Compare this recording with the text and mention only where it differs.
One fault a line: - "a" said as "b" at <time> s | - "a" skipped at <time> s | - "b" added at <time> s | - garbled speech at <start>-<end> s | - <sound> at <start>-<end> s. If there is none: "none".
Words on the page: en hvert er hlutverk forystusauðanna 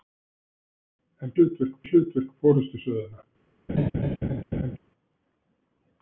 - "hvert" said as "hlutverk" at 1.3 s
- laugh at 3.7-4.8 s